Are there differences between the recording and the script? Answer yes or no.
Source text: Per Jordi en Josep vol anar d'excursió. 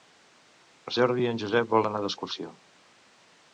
no